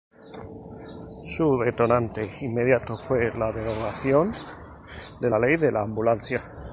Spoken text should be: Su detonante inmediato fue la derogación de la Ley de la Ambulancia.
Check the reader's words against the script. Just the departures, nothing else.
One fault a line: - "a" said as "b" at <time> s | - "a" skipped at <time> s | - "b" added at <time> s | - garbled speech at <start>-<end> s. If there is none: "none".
none